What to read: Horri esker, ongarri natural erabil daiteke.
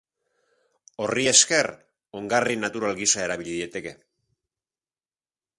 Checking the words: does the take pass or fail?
fail